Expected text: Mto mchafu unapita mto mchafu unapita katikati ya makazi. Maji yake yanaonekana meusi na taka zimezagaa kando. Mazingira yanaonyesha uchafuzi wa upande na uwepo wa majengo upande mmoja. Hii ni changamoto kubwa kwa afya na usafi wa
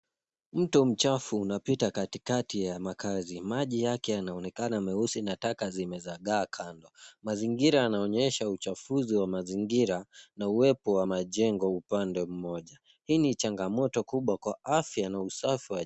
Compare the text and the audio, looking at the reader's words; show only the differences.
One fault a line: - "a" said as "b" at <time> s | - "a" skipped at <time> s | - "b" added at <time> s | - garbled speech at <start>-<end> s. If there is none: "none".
- "mto mchafu unapita" skipped at 1.9 s
- "upande" said as "mazingira" at 9.3 s